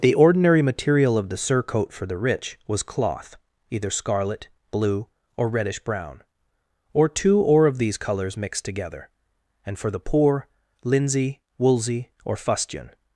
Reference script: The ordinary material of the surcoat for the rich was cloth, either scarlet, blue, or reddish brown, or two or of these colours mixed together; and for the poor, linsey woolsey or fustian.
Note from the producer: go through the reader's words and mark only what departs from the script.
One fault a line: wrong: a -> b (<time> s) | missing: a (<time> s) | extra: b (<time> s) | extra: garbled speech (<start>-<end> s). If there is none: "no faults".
no faults